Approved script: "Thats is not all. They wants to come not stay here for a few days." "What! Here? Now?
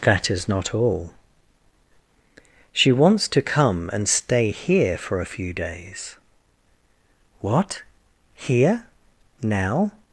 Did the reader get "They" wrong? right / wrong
wrong